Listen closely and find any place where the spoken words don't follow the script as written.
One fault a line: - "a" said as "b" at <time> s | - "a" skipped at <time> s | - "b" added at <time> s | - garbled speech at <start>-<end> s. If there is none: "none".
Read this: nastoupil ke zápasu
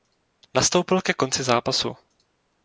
- "konci" added at 1.1 s